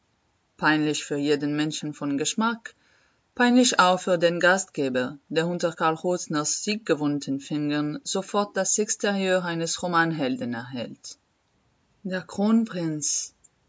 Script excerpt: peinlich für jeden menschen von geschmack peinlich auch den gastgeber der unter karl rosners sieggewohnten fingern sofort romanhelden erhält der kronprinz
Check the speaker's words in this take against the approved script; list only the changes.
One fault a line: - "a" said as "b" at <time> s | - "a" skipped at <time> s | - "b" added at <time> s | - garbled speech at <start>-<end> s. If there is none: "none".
- "für" added at 4.0 s
- "das exterieur eines" added at 8.6 s